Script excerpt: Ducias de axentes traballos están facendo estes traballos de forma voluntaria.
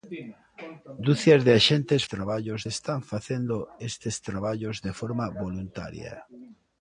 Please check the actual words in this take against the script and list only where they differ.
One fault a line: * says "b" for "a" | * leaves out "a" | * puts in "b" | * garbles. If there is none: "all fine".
all fine